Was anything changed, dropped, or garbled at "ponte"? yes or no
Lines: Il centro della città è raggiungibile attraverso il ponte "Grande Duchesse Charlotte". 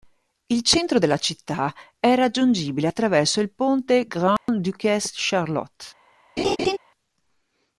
no